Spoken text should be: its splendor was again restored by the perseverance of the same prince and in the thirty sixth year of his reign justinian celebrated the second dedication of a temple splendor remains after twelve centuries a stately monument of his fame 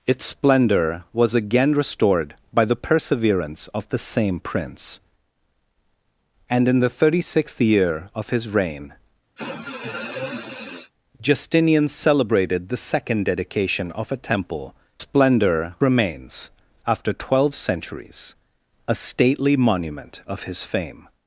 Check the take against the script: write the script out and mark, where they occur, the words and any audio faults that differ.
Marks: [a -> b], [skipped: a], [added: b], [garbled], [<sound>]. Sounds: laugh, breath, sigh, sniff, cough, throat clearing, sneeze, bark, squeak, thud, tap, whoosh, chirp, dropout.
its splendor was again restored by the perseverance of the same prince and in the thirty sixth year of his reign [sniff] justinian celebrated the second dedication of a temple splendor remains after twelve centuries a stately monument of his fame